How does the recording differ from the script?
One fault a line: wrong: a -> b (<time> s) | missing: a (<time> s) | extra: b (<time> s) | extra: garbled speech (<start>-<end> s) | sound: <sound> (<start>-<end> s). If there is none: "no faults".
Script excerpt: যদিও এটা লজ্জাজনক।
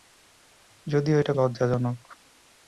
no faults